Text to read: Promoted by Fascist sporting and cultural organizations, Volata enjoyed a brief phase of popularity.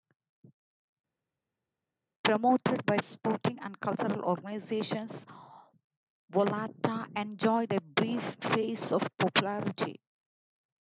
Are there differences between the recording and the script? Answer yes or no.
yes